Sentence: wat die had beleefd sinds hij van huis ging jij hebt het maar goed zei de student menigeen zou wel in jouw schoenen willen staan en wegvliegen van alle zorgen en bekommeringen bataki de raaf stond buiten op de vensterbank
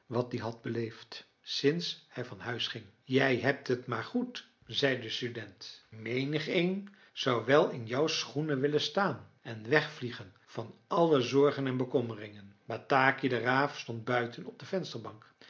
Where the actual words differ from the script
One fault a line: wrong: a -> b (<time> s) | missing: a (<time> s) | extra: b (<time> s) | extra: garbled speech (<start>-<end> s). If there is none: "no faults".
no faults